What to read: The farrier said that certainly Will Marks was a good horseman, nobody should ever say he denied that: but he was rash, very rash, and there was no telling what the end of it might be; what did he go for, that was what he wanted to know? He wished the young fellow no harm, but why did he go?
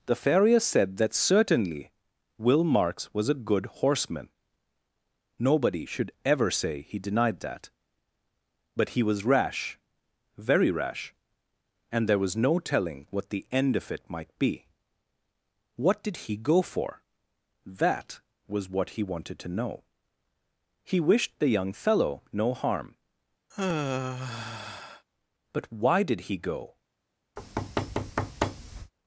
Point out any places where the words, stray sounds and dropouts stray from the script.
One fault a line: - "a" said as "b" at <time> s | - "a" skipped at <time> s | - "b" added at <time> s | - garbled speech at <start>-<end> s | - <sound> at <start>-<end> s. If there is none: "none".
- sigh at 23.5-25.1 s
- thud at 27.4-28.9 s